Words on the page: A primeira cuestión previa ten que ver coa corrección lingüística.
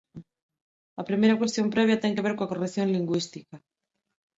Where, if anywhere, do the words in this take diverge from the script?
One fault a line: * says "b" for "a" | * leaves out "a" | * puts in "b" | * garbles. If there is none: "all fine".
all fine